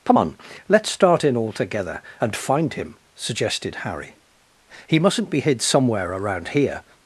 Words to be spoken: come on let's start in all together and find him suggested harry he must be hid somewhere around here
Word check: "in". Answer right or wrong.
right